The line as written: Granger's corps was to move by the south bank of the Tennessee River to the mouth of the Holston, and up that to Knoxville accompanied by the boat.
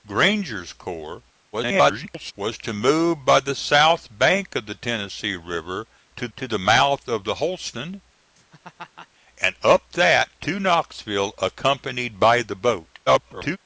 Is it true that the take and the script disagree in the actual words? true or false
true